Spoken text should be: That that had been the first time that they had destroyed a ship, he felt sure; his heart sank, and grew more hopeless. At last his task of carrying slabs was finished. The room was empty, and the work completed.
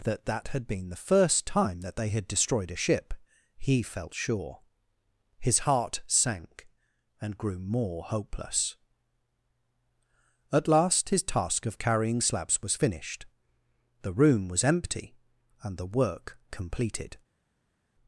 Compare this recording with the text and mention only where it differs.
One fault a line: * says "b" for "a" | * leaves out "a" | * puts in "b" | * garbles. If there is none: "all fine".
all fine